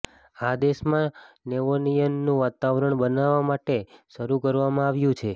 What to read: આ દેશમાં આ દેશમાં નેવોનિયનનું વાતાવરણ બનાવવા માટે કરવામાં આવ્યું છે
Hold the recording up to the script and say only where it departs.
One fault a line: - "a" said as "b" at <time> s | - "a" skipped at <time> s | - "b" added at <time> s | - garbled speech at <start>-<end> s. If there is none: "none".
- "આ દેશમાં" skipped at 1.1 s
- "શરૂ" added at 4.1 s